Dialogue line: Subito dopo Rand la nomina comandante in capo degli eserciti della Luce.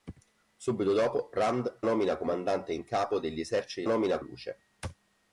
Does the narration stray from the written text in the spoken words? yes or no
yes